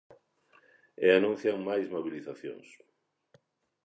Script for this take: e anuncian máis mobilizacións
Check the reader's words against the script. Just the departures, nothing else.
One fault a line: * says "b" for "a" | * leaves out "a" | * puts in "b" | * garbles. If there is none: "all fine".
all fine